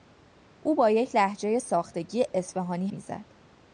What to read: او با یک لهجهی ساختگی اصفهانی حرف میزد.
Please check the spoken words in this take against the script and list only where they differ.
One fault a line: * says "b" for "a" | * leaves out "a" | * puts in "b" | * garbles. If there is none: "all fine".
* leaves out "حرف"